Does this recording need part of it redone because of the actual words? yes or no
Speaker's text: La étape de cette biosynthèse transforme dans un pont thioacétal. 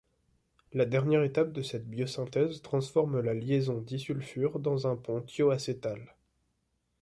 yes